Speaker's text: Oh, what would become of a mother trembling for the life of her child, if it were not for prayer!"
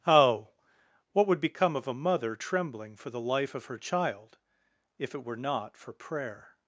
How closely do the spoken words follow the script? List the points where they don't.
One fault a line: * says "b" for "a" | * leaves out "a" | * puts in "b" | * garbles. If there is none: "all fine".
all fine